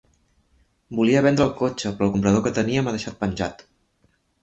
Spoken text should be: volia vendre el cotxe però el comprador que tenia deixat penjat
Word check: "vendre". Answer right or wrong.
right